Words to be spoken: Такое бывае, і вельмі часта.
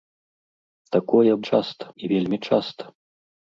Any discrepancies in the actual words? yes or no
yes